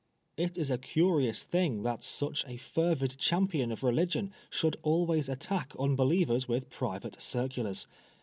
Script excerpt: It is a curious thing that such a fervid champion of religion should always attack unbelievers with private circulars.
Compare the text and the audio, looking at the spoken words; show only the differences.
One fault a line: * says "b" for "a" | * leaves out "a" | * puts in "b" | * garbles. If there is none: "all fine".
all fine